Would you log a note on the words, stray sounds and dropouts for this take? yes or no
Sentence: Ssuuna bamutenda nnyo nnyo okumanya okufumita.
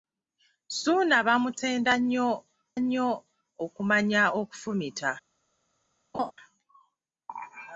yes